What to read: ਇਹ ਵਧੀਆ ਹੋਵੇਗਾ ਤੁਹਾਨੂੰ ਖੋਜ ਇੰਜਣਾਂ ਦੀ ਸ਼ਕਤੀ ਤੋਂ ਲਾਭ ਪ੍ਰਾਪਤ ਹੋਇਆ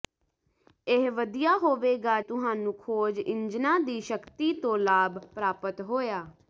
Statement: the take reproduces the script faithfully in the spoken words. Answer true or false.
true